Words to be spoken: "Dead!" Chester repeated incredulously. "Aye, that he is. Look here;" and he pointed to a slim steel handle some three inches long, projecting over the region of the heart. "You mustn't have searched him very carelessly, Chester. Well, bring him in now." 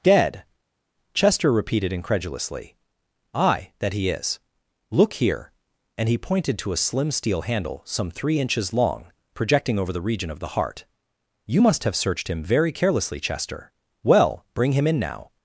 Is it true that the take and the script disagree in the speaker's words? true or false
true